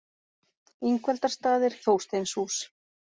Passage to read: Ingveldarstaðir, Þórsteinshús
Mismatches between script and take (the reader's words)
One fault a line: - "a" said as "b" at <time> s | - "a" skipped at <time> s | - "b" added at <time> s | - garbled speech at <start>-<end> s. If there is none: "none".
none